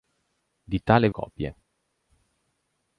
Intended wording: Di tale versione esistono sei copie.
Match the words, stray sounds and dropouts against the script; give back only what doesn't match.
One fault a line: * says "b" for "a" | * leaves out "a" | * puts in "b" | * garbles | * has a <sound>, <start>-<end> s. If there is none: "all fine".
* leaves out "versione esistono sei"